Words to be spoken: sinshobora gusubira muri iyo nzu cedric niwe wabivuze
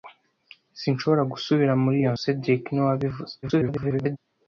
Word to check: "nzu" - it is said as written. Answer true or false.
false